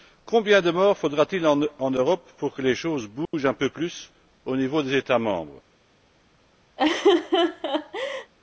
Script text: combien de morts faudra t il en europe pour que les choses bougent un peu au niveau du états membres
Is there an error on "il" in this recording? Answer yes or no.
no